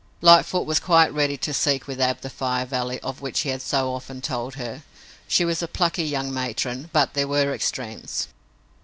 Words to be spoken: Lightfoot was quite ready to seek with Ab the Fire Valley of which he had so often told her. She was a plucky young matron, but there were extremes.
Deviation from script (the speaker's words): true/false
false